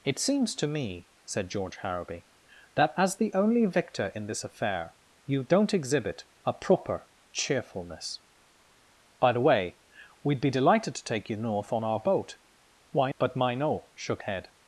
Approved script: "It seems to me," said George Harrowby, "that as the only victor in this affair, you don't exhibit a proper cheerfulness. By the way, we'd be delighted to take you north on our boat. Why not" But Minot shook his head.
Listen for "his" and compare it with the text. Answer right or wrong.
wrong